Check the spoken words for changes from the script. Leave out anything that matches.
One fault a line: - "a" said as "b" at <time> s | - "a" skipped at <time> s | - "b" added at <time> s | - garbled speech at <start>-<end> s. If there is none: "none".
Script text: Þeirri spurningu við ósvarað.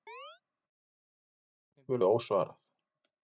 none